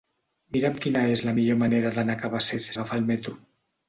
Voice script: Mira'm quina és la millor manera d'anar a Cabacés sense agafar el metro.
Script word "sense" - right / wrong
wrong